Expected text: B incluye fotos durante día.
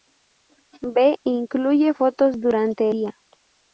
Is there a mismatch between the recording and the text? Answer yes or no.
no